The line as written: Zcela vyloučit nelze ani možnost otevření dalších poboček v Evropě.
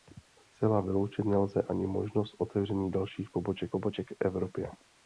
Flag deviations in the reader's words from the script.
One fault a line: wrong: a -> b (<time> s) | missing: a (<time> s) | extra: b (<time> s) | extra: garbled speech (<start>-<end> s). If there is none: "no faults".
extra: poboček (3.7 s)